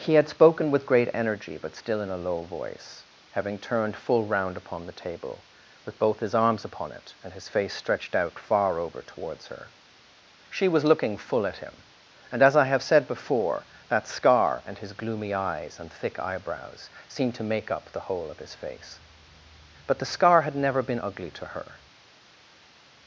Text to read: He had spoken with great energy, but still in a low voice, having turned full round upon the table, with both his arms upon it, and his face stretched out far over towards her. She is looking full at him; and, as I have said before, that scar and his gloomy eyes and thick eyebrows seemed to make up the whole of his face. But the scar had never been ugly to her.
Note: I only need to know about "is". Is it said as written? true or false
false